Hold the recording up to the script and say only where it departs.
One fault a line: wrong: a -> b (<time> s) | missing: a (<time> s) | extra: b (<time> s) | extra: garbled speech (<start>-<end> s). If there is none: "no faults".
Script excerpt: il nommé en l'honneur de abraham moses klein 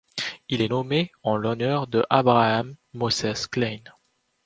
extra: est (0.6 s)